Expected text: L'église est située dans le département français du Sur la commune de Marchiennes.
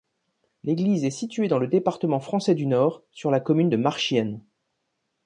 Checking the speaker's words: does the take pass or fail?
fail